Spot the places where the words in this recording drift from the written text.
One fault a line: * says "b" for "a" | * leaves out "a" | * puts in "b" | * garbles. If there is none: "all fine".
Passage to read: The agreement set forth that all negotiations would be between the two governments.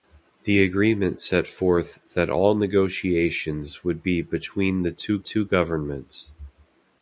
* puts in "two"